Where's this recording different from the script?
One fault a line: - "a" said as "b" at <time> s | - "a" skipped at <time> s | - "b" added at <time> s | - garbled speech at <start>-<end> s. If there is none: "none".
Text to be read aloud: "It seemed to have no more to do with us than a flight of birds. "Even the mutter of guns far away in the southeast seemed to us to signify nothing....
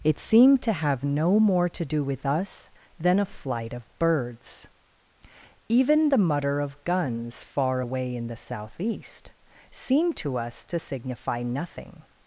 none